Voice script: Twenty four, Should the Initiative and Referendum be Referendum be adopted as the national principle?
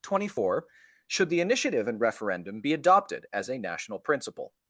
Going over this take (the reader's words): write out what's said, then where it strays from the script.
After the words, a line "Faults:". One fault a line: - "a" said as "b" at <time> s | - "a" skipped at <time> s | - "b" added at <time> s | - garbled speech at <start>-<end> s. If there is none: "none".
Twenty four, Should the Initiative and Referendum be adopted as a national principle?
Faults:
- "Referendum be" skipped at 2.7 s
- "the" said as "a" at 3.5 s